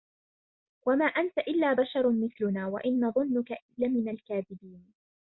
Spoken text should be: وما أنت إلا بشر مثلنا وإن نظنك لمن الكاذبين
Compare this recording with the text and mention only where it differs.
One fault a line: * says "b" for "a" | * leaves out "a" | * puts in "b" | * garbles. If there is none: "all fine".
all fine